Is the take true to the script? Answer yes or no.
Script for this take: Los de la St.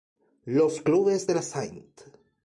no